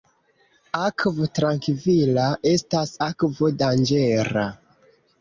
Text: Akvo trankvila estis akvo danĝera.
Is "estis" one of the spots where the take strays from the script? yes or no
yes